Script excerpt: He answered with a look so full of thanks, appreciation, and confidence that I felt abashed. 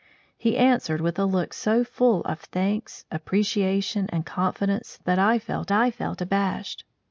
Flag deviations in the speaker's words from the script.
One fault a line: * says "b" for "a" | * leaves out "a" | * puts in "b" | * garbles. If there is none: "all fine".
* puts in "I felt"